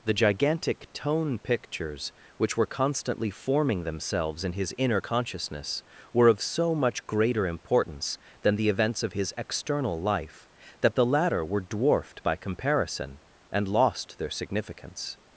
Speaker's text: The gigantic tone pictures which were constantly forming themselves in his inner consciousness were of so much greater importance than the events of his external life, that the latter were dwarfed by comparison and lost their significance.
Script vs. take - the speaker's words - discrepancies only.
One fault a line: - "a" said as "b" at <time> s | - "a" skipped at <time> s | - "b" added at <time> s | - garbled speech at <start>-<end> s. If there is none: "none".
none